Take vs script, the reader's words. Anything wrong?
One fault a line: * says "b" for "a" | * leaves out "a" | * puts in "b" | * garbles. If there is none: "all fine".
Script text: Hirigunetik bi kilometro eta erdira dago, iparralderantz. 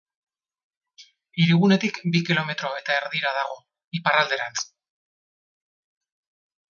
all fine